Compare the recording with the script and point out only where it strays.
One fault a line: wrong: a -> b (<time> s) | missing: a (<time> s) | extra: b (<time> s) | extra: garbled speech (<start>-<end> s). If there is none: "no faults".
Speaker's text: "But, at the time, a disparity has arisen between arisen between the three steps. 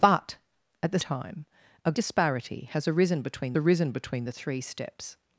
no faults